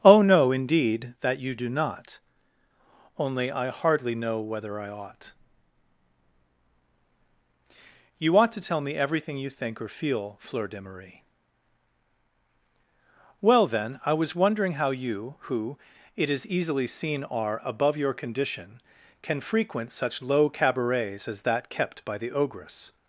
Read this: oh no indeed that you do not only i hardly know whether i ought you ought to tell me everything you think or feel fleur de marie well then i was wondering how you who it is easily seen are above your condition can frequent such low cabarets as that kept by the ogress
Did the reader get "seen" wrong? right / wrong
right